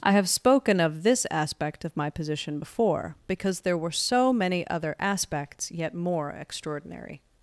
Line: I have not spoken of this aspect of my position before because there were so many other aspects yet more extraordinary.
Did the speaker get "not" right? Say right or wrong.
wrong